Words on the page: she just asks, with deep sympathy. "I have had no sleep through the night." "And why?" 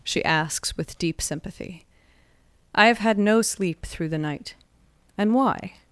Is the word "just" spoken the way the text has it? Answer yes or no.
no